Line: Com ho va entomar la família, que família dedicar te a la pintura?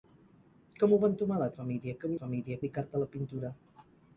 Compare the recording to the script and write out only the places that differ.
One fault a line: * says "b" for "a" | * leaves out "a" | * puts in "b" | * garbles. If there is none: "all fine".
all fine